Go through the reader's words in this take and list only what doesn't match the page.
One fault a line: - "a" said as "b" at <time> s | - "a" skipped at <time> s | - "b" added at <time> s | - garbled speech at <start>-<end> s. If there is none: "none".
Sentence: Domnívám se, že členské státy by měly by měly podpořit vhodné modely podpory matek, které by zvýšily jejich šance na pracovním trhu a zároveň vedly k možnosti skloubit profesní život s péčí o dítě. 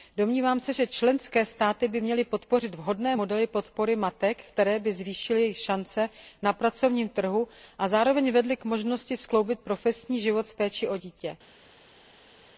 - "by měly" skipped at 2.2 s